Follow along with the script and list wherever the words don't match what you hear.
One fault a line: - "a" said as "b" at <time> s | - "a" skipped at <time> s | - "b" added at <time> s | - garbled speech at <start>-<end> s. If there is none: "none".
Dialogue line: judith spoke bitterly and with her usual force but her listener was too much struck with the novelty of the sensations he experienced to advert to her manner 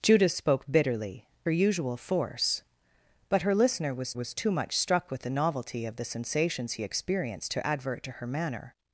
- "and with" skipped at 1.3 s
- "was" added at 4.1 s